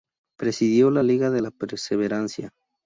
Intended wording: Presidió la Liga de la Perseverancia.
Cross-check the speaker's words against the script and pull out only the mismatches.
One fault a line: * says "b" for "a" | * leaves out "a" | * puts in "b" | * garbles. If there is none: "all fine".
all fine